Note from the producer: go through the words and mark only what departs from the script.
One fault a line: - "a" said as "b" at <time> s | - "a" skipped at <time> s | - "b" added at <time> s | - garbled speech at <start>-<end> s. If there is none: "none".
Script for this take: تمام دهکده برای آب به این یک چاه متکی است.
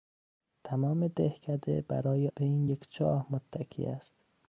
- "آب" skipped at 2.3 s